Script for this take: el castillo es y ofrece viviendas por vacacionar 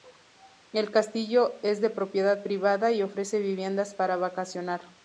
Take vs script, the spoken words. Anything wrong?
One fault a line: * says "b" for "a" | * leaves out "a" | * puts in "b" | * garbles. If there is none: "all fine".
* puts in "de propiedad privada"
* says "para" for "por"